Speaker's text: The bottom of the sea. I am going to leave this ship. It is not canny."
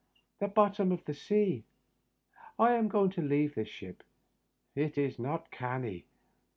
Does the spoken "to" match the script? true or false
true